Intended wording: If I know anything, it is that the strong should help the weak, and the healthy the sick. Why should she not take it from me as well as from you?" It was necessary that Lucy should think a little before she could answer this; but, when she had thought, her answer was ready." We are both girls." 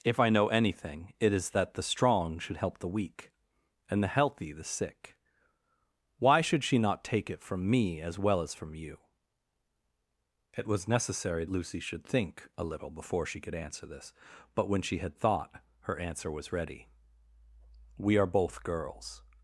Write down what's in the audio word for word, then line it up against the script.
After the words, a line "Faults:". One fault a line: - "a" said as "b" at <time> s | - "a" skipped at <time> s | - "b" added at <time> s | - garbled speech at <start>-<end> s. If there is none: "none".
If I know anything, it is that the strong should help the weak, and the healthy the sick. Why should she not take it from me as well as from you?" It was necessary Lucy should think a little before she could answer this; but, when she had thought, her answer was ready." We are both girls."
Faults:
- "that" skipped at 11.4 s